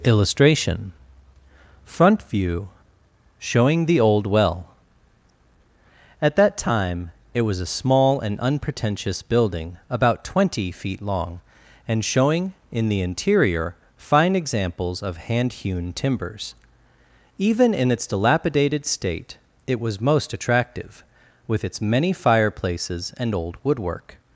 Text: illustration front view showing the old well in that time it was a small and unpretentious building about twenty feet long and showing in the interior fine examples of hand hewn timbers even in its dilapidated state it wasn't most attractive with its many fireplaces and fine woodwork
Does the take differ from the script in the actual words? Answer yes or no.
yes